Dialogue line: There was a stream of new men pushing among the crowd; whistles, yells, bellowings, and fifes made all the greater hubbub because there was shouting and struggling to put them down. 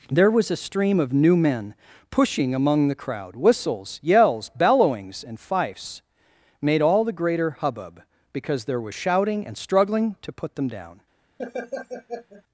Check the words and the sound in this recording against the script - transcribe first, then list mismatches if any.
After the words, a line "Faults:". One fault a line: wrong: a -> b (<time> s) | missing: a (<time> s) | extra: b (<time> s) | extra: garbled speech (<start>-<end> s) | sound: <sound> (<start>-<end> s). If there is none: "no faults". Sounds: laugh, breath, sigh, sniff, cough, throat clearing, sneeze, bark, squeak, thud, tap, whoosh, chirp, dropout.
There was a stream of new men pushing among the crowd; whistles, yells, bellowings, and fifes made all the greater hubbub because there was shouting and struggling to put them down.
Faults:
sound: laugh (11.4-12.4 s)